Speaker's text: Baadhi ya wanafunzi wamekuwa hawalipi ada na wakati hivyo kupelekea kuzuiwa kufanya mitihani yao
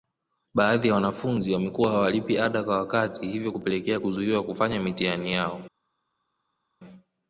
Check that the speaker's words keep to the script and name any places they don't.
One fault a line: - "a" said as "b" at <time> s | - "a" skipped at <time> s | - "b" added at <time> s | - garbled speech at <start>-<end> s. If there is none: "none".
- "na" said as "kwa" at 2.6 s